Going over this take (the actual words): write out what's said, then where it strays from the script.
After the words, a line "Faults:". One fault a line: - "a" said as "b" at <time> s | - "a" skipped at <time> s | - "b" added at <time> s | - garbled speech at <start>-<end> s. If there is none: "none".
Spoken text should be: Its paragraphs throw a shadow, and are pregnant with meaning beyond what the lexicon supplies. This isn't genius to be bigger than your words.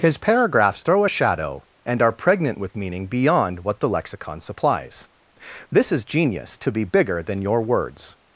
His paragraphs throw a shadow, and are pregnant with meaning beyond what the lexicon supplies. This is genius to be bigger than your words.
Faults:
- "Its" said as "His" at 0.0 s
- "isn't" said as "is" at 5.9 s